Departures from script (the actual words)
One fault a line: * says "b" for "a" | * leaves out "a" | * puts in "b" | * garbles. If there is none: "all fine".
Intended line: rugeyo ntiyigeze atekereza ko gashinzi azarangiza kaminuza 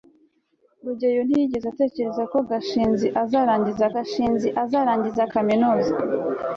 * puts in "gashinzi azarangiza"